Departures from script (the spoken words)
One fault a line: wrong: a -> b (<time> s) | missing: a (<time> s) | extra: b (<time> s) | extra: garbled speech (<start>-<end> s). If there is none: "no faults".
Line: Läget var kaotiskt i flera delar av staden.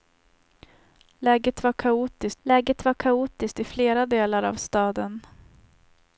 extra: läget var kaotiskt (2.4 s)